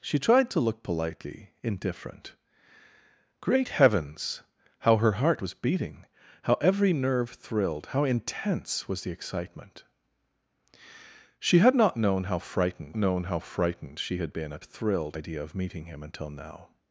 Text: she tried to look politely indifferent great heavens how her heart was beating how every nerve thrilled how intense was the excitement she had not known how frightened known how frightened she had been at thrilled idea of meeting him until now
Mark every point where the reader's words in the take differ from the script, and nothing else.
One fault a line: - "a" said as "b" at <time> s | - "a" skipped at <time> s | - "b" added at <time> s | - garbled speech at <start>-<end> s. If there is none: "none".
none